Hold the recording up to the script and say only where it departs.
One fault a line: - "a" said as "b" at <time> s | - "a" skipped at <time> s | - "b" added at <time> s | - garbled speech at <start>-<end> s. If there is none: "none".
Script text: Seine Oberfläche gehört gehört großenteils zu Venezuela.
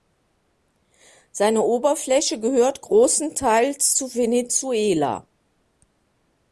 - "gehört" skipped at 2.8 s